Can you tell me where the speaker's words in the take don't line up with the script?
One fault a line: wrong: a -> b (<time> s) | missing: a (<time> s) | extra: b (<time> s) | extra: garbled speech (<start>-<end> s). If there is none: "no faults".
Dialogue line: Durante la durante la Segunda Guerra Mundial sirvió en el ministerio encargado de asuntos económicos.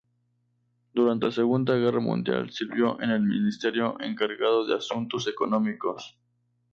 missing: durante la (1.3 s)